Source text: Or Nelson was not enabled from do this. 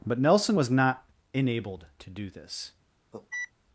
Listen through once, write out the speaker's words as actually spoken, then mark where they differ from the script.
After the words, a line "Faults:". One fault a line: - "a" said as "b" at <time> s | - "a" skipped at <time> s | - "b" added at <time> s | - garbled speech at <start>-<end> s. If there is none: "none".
But Nelson was not enabled to do this.
Faults:
- "Or" said as "But" at 0.1 s
- "from" said as "to" at 2.0 s